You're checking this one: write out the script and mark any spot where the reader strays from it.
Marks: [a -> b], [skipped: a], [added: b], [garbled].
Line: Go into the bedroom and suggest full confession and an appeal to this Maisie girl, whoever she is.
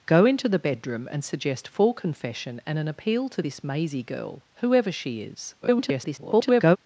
Go into the bedroom and suggest full confession and an appeal to this Maisie girl, whoever she is. [garbled]